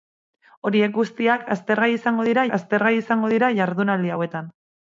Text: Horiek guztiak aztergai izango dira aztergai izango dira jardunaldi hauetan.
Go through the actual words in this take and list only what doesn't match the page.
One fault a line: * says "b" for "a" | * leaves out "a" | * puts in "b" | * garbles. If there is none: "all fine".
all fine